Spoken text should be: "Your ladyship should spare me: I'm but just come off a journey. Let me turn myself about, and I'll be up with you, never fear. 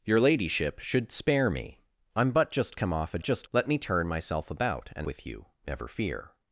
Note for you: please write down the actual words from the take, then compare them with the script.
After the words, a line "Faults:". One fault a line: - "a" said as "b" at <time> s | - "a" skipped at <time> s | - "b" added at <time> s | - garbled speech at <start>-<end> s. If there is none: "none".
"Your ladyship should spare me: I'm but just come off a just. Let me turn myself about, and With you, never fear.
Faults:
- "journey" said as "just" at 3.2 s
- "I'll be up" skipped at 5.1 s